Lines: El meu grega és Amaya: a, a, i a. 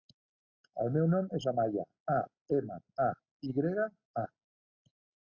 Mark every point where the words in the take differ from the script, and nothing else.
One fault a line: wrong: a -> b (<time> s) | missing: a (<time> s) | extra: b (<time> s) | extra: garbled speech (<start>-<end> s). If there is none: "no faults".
wrong: grega -> nom (1.1 s)
extra: ema (2.6 s)
extra: grega (3.6 s)